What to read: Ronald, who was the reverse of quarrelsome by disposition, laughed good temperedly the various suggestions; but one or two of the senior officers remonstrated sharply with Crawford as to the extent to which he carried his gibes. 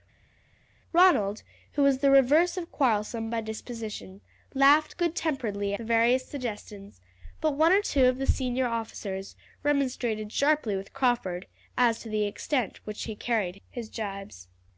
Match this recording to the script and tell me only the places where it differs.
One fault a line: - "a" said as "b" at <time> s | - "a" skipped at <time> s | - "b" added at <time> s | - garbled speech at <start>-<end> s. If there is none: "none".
none